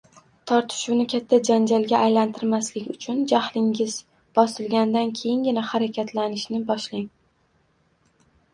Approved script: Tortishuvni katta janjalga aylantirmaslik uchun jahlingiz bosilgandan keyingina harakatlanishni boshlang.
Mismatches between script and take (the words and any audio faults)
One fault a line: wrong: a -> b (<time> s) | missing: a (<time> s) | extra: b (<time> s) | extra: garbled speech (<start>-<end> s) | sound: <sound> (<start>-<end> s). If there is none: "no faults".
no faults